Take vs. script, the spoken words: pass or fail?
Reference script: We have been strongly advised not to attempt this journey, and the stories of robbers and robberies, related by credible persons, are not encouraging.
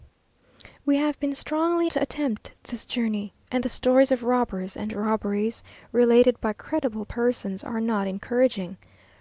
fail